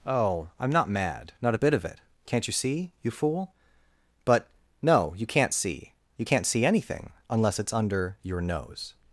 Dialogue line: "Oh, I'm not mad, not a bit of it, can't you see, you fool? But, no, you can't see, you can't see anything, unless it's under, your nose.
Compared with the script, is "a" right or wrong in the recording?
right